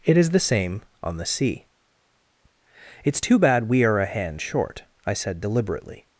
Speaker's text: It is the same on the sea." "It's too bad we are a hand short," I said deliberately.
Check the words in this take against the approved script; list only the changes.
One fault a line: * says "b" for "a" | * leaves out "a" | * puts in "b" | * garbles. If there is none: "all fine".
all fine